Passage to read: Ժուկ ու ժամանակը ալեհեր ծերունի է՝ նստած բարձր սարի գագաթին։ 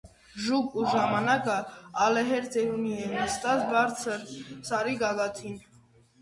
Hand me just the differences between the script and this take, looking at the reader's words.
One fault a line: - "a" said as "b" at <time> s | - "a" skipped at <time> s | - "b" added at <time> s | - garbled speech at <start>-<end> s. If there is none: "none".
none